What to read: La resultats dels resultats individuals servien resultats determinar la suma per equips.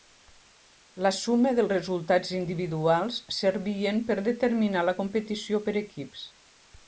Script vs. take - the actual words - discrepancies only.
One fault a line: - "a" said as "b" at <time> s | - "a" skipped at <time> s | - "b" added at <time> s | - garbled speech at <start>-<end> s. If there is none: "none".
- "resultats" said as "suma" at 1.2 s
- "resultats" said as "per" at 4.1 s
- "suma" said as "competició" at 5.0 s